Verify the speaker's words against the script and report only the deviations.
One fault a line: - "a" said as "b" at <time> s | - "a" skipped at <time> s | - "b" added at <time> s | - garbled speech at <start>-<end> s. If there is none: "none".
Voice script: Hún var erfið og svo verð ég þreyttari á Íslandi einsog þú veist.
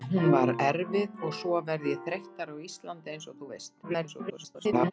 - garbled speech at 3.8-4.9 s